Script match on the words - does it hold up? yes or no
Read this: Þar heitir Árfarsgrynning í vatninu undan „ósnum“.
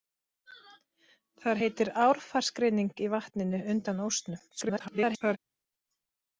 no